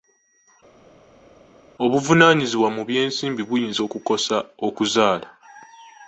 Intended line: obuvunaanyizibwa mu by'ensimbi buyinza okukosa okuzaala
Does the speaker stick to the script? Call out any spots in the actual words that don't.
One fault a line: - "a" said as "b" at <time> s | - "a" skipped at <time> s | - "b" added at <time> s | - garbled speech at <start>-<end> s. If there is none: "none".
none